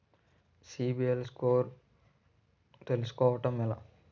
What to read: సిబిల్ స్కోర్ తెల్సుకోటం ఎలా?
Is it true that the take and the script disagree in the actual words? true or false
false